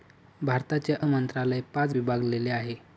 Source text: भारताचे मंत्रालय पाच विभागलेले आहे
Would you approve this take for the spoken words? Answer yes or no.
yes